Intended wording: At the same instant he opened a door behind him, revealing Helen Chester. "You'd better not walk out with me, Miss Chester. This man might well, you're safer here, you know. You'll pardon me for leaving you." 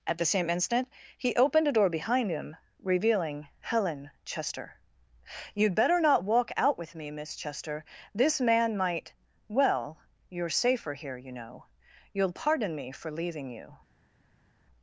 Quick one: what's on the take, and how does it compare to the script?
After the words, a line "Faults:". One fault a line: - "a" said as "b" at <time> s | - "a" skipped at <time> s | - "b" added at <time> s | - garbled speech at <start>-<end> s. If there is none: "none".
At the same instant he opened a door behind him, revealing Helen Chester. "You'd better not walk out with me, Miss Chester. This man might well, you're safer here, you know. You'll pardon me for leaving you."
Faults:
none